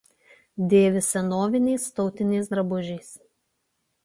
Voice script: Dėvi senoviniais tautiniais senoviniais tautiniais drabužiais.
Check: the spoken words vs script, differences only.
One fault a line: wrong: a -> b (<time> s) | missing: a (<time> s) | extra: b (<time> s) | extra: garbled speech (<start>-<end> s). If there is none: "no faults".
missing: senoviniais tautiniais (2.5 s)